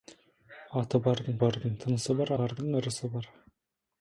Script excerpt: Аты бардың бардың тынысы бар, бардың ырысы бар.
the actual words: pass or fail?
pass